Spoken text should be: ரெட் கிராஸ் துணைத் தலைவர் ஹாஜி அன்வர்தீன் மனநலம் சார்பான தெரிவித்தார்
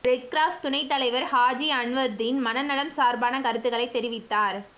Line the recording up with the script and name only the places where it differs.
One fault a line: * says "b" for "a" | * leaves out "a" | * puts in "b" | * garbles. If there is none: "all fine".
* puts in "கருத்துக்களை"